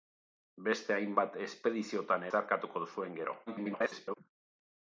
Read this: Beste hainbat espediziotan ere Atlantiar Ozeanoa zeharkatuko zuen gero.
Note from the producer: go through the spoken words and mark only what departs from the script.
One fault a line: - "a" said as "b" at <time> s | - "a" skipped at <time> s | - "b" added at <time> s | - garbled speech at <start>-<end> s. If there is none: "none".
- "ere Atlantiar Ozeanoa" skipped at 2.2 s
- garbled speech at 3.5-4.2 s